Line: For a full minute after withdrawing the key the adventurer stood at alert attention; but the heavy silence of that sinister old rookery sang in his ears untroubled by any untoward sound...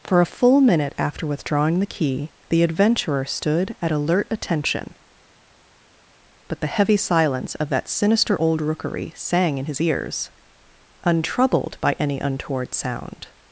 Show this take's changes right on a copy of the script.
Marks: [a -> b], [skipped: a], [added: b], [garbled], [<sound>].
For a full minute after withdrawing the key the adventurer stood at alert attention; but the heavy silence of that sinister old rookery sang in his ears untroubled by any untoward sound...